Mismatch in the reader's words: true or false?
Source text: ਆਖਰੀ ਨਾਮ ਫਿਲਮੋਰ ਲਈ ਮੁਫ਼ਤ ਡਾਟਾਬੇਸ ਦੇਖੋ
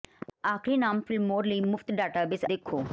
false